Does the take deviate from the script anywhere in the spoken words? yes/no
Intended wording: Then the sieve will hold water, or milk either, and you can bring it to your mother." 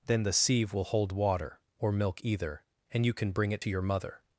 no